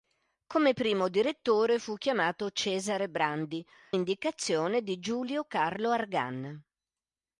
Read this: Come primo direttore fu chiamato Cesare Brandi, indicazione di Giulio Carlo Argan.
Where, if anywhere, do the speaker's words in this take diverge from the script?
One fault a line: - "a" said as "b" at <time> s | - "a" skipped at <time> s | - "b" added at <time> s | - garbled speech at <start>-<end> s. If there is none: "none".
none